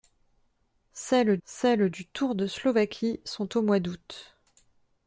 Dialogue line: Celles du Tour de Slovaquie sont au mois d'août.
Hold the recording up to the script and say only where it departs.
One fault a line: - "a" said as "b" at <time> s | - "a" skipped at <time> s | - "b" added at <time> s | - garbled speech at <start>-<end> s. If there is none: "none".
- "celles" added at 1.4 s